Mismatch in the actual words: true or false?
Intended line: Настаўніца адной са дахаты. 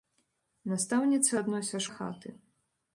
false